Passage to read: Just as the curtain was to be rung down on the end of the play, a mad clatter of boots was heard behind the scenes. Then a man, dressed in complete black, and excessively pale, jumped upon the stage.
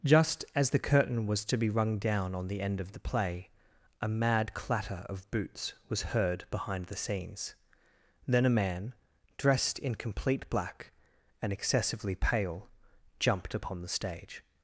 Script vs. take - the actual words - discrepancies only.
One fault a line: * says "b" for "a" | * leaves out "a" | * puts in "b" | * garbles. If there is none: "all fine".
all fine